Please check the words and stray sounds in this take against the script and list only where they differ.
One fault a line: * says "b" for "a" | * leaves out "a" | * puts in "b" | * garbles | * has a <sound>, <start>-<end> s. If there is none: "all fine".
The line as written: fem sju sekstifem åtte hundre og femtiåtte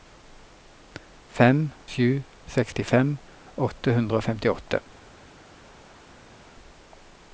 all fine